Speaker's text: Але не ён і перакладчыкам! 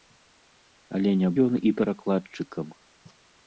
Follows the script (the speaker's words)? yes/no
yes